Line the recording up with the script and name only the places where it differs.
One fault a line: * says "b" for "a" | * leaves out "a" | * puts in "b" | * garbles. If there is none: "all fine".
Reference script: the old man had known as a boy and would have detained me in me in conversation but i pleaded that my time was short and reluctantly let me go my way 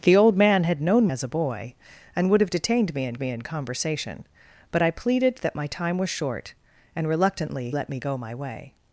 all fine